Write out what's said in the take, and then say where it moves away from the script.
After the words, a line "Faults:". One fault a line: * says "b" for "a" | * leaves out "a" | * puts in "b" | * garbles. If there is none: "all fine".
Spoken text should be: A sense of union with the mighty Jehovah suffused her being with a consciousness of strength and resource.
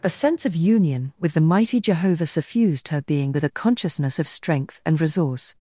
A sense of union with the mighty Jehovah suffused her being with a consciousness of strength and resource.
Faults:
all fine